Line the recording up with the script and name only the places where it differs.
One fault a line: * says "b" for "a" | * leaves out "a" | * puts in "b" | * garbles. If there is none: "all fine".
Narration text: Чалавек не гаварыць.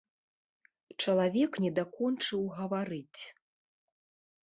* puts in "дакончыў"